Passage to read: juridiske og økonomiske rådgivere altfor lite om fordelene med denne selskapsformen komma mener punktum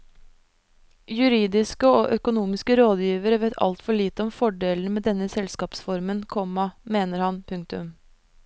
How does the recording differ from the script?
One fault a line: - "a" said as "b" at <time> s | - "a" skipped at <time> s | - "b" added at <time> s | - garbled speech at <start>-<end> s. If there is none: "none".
- "vet" added at 3.4 s
- "han" added at 7.3 s